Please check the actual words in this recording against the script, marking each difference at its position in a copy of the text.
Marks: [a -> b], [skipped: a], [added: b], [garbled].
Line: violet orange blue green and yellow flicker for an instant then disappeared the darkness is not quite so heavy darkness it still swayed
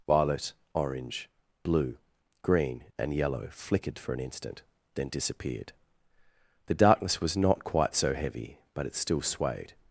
violet orange blue green and yellow [flicker -> flickered] for an instant then disappeared the darkness [is -> was] not quite so heavy [darkness -> but] it still swayed